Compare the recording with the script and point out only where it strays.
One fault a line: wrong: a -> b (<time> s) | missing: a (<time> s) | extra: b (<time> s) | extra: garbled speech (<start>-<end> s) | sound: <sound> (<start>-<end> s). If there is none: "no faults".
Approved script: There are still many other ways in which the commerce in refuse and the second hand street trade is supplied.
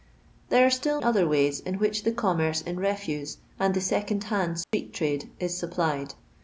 missing: many (1.0 s)
sound: dropout (4.6-4.7 s)